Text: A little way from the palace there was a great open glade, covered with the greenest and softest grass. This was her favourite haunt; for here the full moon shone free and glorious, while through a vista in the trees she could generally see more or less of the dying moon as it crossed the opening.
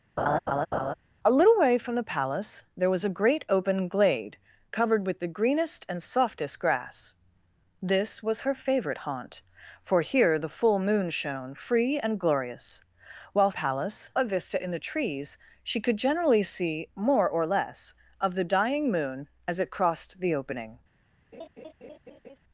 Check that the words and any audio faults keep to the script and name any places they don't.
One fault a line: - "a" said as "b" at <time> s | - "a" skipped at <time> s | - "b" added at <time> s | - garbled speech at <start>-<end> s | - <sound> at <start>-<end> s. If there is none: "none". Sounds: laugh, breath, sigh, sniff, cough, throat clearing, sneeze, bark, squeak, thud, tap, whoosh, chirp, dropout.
- laugh at 0.2-0.9 s
- "through" said as "palace" at 13.6 s
- laugh at 21.3-22.4 s